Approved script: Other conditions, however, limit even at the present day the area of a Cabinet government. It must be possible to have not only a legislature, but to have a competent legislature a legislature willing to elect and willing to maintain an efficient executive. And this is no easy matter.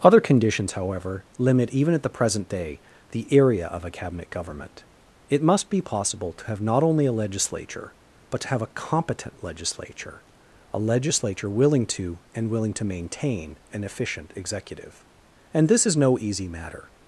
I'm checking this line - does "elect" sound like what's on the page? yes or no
no